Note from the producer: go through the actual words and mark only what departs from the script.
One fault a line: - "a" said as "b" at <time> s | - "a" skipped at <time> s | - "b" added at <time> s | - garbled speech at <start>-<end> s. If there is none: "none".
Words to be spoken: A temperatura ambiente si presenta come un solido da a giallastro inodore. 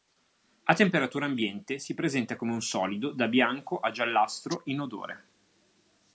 - "bianco" added at 3.3 s